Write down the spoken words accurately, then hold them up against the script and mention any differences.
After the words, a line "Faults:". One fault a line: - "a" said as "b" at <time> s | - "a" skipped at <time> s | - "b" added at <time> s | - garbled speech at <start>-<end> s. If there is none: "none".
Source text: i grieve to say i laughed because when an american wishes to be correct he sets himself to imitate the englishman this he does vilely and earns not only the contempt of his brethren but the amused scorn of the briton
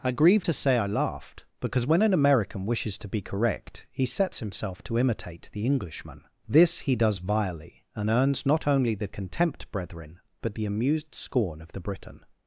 i grieve to say i laughed because when an american wishes to be correct he sets himself to imitate the englishman this he does vilely and earns not only the contempt brethren but the amused scorn of the briton
Faults:
- "of his" skipped at 9.7 s